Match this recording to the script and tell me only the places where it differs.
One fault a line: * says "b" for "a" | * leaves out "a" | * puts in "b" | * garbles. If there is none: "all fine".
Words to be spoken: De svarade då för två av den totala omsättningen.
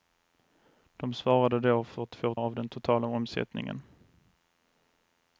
all fine